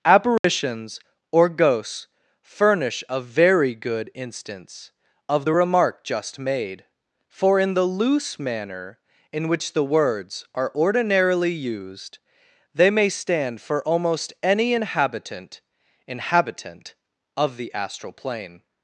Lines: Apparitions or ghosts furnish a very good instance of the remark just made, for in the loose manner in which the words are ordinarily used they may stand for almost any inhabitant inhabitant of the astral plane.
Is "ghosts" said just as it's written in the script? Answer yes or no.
yes